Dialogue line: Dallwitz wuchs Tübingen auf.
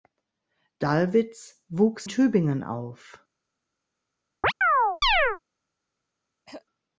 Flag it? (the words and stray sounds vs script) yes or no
yes